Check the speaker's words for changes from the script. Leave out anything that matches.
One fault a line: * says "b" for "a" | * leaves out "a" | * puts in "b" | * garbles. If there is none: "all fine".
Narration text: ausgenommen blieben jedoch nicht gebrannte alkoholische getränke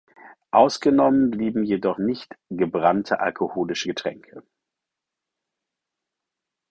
all fine